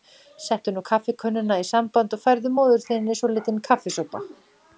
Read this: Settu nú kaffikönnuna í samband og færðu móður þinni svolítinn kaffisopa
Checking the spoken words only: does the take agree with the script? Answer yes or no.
yes